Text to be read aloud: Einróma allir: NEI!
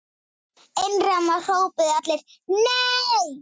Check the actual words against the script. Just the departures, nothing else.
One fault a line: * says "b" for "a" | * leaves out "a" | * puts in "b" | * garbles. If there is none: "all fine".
* puts in "hrópuðu"